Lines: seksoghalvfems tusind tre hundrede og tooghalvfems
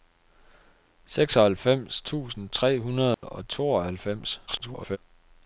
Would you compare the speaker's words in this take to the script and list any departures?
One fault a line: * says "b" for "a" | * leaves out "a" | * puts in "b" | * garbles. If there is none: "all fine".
* garbles